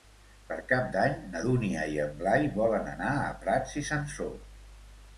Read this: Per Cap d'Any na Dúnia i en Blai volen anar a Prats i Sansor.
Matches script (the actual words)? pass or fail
pass